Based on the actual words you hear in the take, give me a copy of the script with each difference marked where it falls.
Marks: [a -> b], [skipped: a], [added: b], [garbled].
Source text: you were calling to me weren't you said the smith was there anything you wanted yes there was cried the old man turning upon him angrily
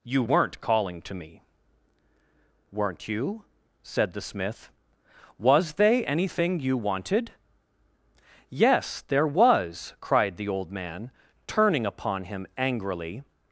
you [were -> weren't] calling to me weren't you said the smith was [there -> they] anything you wanted yes there was cried the old man turning upon him angrily